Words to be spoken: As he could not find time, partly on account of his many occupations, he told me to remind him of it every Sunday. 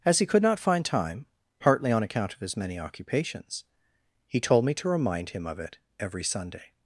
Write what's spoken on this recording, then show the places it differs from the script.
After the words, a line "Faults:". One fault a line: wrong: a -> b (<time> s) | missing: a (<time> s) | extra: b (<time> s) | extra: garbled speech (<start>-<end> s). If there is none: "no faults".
As he could not find time, partly on account of his many occupations, he told me to remind him of it every Sunday.
Faults:
no faults